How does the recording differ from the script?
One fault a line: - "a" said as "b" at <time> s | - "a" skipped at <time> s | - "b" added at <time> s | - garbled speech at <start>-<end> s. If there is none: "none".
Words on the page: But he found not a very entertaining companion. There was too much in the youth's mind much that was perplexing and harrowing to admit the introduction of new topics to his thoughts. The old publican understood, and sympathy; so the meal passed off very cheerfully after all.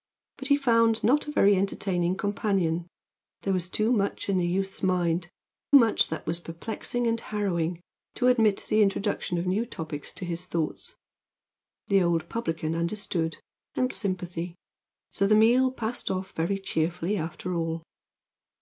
none